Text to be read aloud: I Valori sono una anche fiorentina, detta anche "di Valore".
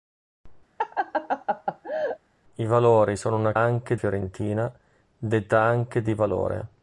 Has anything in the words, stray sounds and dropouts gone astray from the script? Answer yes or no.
yes